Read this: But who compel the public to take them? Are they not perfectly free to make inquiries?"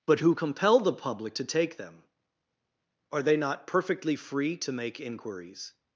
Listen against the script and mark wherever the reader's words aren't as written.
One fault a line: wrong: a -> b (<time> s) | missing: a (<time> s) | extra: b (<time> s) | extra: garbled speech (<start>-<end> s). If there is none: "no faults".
no faults